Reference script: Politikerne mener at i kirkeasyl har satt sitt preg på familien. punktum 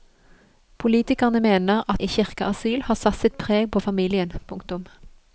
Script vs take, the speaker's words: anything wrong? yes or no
no